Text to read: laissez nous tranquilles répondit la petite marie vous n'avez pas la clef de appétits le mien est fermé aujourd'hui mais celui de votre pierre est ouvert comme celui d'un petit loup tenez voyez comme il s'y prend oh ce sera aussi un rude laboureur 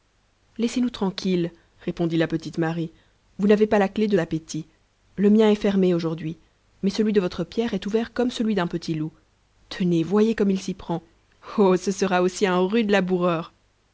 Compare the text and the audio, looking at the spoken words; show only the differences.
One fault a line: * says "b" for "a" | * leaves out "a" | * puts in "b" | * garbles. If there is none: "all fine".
all fine